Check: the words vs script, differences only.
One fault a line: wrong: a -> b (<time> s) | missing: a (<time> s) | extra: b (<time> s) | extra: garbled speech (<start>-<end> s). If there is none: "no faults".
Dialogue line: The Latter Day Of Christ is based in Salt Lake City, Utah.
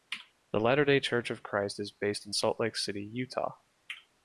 extra: Church (1.0 s)